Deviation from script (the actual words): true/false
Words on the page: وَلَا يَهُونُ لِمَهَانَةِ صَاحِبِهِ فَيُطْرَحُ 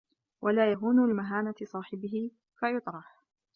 false